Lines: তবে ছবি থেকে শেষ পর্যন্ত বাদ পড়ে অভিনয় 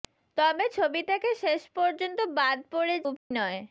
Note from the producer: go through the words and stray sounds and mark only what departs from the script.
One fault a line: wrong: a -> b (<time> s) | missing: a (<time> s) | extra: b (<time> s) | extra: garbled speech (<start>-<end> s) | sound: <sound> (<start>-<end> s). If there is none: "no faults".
sound: dropout (3.2-3.3 s)